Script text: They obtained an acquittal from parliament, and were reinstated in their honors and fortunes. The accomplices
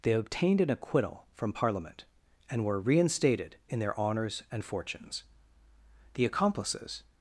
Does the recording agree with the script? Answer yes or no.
yes